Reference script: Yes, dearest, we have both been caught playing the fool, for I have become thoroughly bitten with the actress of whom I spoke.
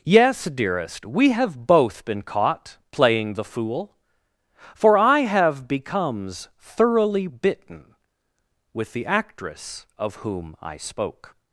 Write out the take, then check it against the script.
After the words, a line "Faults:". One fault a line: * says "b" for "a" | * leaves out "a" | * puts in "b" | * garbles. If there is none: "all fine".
Yes, dearest, we have both been caught playing the fool, for I have becomes thoroughly bitten with the actress of whom I spoke.
Faults:
* says "becomes" for "become"